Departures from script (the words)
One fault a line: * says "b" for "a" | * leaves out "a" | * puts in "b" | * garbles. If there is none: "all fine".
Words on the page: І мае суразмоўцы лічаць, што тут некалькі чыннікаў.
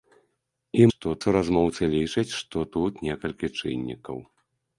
* says "што" for "мае"